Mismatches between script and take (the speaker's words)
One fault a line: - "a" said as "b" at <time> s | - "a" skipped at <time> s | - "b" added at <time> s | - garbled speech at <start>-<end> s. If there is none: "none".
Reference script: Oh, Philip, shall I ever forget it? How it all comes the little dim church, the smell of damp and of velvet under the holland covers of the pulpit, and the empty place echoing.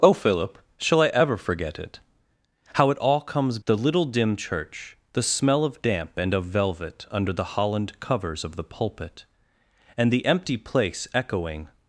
none